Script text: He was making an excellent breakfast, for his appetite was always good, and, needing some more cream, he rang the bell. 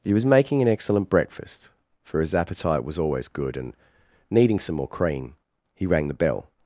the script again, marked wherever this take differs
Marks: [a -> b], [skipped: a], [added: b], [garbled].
He was making an excellent breakfast, for his appetite was always good, and, needing some more cream, he rang the bell.